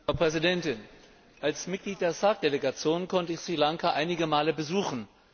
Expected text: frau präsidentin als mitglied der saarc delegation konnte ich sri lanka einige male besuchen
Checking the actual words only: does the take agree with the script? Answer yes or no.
yes